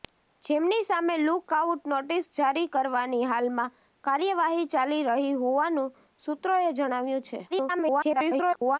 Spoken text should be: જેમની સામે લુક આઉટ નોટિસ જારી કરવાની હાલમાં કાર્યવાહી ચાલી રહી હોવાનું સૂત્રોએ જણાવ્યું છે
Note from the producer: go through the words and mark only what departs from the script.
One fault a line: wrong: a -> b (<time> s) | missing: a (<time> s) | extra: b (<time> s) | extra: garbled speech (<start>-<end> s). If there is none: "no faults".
extra: garbled speech (7.5-8.8 s)